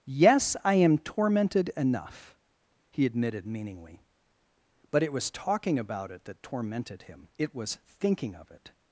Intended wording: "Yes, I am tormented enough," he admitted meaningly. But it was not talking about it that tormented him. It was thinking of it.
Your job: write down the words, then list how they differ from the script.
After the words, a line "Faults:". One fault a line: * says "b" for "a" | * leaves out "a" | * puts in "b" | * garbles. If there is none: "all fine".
"Yes, I am tormented enough," he admitted meaningly. But it was talking about it that tormented him. It was thinking of it.
Faults:
* leaves out "not"